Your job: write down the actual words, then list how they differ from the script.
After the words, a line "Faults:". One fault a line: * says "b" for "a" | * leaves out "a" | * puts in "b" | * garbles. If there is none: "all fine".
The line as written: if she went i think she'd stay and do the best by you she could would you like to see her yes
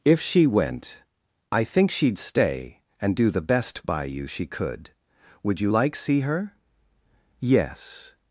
if she went i think she'd stay and do the best by you she could would you like see her yes
Faults:
* leaves out "to"